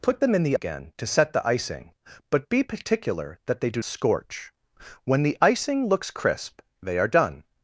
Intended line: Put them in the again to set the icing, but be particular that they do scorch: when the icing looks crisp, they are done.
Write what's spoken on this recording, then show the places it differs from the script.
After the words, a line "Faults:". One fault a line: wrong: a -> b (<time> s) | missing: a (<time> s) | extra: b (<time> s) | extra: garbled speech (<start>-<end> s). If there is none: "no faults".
Put them in the again to set the icing, but be particular that they do scorch: when the icing looks crisp, they are done.
Faults:
no faults